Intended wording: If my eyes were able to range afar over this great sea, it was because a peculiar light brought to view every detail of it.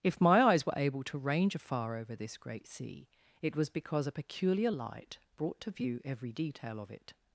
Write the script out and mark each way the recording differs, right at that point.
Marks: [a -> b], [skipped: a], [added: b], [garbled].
If my eyes were able to range afar over this great sea, it was because a peculiar light brought to view every detail of it.